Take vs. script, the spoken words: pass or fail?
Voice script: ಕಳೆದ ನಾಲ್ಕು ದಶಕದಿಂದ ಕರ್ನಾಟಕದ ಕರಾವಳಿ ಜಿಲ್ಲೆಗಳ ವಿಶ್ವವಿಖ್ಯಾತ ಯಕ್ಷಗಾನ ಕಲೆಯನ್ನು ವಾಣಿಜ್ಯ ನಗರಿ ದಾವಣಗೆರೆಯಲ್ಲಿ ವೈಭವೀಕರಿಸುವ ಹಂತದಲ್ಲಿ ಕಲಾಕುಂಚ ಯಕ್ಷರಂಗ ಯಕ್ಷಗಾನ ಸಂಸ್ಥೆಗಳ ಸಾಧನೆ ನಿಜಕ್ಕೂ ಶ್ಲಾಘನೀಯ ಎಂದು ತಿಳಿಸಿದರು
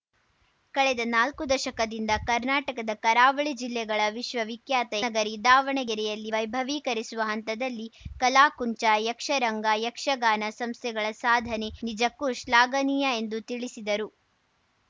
fail